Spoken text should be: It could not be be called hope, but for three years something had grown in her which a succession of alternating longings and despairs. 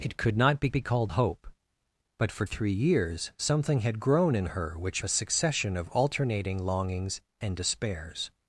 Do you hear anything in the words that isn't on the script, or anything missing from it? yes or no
no